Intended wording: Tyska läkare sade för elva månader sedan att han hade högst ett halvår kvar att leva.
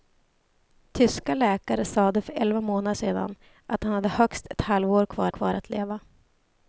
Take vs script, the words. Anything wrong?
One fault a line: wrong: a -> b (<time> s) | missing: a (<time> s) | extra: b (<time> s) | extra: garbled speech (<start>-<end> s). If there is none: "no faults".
extra: kvar (5.3 s)